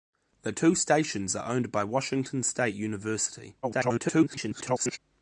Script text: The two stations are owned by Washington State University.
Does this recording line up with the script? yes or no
no